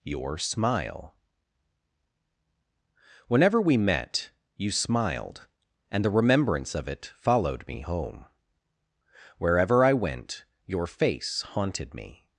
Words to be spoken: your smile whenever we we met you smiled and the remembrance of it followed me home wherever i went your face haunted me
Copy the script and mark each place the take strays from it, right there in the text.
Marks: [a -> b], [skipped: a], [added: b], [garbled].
your smile whenever we [skipped: we] met you smiled and the remembrance of it followed me home wherever i went your face haunted me